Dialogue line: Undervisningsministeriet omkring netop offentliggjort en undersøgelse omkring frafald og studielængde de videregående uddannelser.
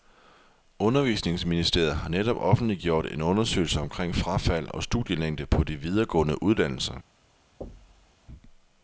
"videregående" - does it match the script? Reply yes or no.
yes